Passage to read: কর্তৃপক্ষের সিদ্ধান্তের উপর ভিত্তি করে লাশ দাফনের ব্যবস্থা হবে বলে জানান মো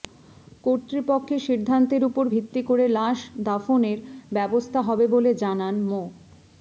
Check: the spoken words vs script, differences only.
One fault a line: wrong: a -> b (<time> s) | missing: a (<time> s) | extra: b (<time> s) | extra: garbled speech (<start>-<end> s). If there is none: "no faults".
no faults